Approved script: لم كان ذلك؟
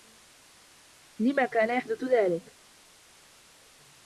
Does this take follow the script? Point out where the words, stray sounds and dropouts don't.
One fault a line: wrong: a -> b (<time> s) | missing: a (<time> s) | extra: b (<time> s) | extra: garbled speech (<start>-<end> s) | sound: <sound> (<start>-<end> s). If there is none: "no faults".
extra: يحدث (1.7 s)